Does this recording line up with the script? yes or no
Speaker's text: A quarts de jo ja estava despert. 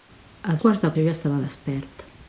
yes